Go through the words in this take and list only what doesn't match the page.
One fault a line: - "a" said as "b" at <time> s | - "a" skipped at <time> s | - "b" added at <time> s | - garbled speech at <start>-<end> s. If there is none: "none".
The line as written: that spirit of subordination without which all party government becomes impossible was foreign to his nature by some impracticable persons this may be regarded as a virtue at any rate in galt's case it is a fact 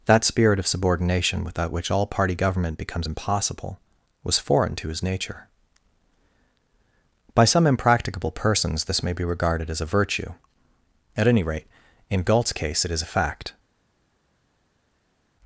none